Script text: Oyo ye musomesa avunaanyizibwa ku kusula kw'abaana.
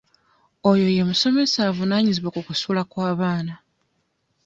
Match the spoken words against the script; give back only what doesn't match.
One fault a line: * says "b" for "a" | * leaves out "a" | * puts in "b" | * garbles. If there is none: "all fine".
all fine